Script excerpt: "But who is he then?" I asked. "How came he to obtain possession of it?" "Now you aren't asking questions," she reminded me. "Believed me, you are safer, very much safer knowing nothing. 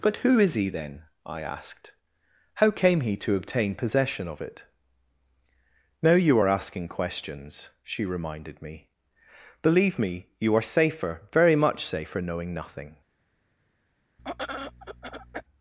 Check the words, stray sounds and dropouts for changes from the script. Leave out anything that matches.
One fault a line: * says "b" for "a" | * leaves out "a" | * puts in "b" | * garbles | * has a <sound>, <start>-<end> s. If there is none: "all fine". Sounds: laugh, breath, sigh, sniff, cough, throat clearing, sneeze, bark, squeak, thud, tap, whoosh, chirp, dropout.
* says "are" for "aren't"
* says "Believe" for "Believed"
* has a throat clearing, 14.2-15.4 s